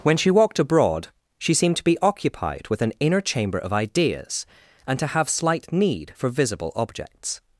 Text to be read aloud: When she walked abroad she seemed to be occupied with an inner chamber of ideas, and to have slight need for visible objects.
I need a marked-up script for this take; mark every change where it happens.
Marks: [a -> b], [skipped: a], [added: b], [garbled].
When she walked abroad she seemed to be occupied with an inner chamber of ideas, and to have slight need for visible objects.